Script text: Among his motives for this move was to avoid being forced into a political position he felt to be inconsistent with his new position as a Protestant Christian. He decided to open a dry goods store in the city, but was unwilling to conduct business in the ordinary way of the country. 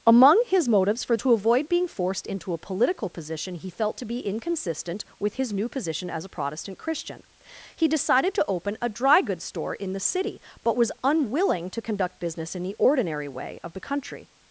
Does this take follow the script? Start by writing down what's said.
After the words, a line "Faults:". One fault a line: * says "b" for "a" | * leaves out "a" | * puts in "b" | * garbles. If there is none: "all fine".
Among his motives for to avoid being forced into a political position he felt to be inconsistent with his new position as a Protestant Christian. He decided to open a dry goods store in the city, but was unwilling to conduct business in the ordinary way of the country.
Faults:
* leaves out "this move was"